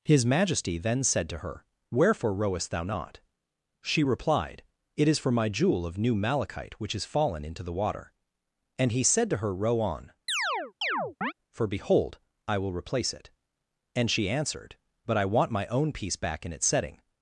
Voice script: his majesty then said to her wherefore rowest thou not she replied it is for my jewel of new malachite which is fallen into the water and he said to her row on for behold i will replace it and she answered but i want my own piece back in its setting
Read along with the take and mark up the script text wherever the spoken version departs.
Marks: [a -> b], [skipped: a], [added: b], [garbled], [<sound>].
his majesty then said to her wherefore rowest thou not she replied it is for my jewel of new malachite which is fallen into the water and he said to her row on [chirp] for behold i will replace it and she answered but i want my own piece back in its setting